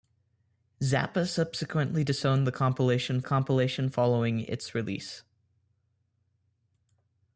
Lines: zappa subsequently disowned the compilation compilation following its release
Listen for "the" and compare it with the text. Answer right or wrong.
right